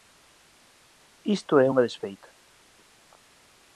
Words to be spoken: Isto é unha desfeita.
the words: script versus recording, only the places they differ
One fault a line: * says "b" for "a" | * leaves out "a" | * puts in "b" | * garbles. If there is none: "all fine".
all fine